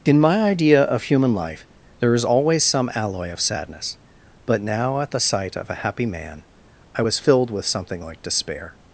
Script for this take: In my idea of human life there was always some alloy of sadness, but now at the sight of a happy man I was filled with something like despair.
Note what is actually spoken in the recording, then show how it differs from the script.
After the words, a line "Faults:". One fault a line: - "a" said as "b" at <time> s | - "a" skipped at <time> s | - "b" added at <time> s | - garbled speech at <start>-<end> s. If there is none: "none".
In my idea of human life there is always some alloy of sadness, but now at the sight of a happy man I was filled with something like despair.
Faults:
- "was" said as "is" at 2.1 s